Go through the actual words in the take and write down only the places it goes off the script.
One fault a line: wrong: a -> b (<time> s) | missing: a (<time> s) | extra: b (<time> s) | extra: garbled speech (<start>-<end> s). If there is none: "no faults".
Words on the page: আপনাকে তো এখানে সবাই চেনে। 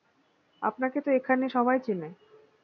no faults